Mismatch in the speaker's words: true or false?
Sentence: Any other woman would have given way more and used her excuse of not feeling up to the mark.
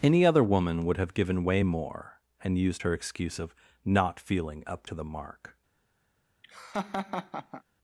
false